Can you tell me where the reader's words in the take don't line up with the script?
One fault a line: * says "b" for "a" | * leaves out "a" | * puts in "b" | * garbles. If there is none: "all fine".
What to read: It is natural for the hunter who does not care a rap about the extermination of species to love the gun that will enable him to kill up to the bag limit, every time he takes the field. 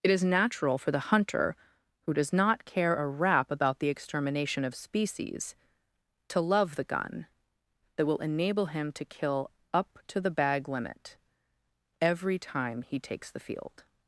all fine